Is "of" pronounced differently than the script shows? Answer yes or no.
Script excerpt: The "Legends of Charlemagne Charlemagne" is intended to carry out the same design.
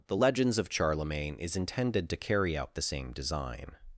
no